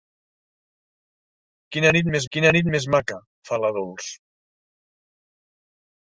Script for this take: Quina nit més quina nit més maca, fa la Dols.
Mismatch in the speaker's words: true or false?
false